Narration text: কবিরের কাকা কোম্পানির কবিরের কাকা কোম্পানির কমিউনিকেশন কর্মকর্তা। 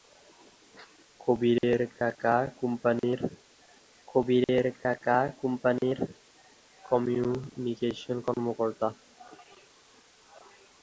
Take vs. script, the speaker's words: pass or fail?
pass